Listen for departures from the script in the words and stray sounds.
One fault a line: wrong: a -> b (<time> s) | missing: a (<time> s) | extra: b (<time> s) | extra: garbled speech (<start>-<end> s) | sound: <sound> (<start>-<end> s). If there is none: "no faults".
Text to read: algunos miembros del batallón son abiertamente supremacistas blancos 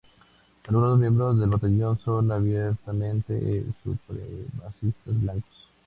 no faults